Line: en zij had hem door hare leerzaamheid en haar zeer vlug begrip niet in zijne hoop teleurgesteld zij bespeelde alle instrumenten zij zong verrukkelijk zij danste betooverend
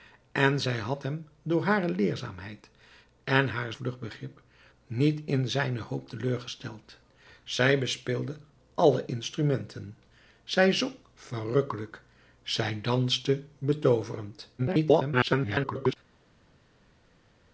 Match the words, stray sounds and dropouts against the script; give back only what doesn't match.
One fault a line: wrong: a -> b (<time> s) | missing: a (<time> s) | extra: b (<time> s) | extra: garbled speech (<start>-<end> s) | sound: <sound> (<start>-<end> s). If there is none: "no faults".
missing: zeer (3.7 s)
extra: garbled speech (14.6-16.0 s)